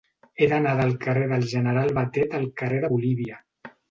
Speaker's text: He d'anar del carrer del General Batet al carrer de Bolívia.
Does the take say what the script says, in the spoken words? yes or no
yes